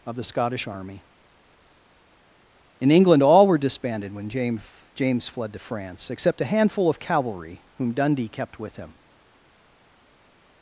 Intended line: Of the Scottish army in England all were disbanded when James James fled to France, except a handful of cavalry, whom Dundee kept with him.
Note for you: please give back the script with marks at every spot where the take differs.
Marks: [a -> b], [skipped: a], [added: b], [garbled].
Of the Scottish army in England all were disbanded when James James fled to France, except a handful of cavalry, whom Dundee kept with him.